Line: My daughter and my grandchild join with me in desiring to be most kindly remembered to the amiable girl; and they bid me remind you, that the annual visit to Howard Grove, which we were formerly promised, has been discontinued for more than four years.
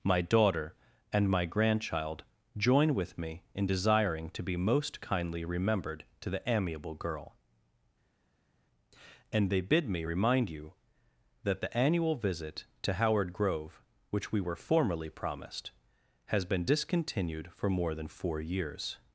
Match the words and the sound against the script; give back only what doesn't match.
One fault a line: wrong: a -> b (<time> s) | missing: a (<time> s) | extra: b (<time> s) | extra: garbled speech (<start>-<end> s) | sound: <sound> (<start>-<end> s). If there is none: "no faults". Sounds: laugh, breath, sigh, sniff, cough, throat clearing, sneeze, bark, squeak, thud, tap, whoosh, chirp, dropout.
no faults